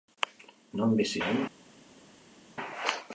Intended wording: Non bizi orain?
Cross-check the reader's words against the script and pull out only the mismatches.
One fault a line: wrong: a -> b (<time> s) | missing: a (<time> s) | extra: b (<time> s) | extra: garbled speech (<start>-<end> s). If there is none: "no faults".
no faults